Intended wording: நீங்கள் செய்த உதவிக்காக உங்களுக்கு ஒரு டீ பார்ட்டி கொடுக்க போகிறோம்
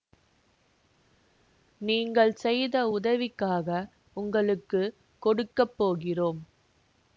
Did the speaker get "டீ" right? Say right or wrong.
wrong